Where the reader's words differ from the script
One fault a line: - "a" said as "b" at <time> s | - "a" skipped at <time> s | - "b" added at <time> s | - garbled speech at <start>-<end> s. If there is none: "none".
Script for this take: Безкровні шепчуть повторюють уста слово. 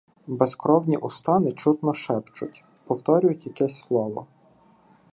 - "уста нечутно" added at 1.0 s
- "уста" said as "якесь" at 3.5 s